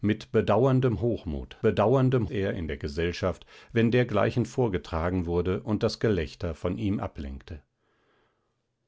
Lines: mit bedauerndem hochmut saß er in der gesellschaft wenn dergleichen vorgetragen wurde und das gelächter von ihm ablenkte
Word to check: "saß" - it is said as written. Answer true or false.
false